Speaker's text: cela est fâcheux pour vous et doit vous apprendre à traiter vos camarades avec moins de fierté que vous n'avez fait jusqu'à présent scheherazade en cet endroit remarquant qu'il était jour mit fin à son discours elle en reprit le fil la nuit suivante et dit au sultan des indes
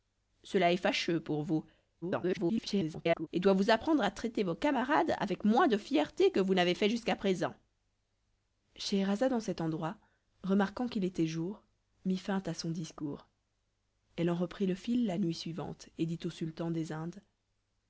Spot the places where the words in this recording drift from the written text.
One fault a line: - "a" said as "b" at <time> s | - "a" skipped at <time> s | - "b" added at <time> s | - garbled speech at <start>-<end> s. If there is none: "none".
- garbled speech at 2.0-3.3 s